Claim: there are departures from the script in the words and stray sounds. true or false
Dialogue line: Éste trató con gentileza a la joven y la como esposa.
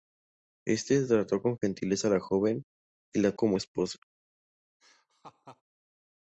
true